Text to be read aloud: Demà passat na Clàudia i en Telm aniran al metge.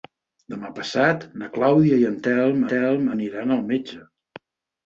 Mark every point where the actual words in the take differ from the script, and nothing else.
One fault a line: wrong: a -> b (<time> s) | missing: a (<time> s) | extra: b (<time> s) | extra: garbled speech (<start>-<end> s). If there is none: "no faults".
extra: Telm (2.8 s)